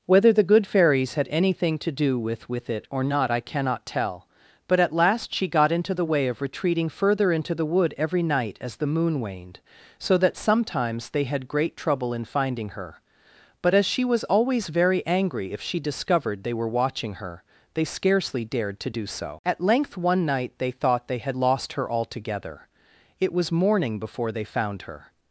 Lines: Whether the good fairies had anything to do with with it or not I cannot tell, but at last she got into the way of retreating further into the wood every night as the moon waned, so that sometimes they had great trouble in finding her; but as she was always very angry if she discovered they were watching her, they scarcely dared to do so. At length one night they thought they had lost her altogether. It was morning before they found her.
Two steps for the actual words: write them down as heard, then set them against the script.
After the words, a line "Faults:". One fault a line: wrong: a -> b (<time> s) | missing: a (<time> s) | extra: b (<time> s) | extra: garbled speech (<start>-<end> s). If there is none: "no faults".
Whether the good fairies had anything to do with with it or not I cannot tell, but at last she got into the way of retreating further into the wood every night as the moon waned, so that sometimes they had great trouble in finding her; but as she was always very angry if she discovered they were watching her, they scarcely dared to do so. At length one night they thought they had lost her altogether. It was morning before they found her.
Faults:
no faults